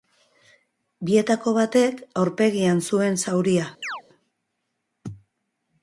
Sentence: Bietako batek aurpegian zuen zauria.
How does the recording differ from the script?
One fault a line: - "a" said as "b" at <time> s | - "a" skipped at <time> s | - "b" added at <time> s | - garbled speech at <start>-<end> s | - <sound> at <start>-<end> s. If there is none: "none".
- chirp at 3.8-4.0 s